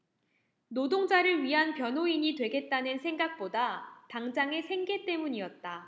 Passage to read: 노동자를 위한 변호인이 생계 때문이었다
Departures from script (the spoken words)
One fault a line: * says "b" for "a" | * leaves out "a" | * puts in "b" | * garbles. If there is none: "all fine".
* puts in "되겠다는 생각보다 당장의"